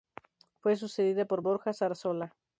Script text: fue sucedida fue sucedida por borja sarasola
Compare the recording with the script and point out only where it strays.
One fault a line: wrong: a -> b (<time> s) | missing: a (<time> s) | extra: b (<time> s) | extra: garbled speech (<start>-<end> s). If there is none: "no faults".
missing: fue sucedida (1.2 s)